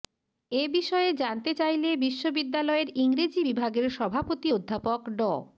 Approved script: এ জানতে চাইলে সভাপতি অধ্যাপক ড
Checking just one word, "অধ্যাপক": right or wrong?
right